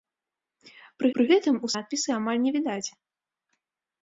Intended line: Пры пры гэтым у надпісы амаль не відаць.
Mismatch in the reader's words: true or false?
false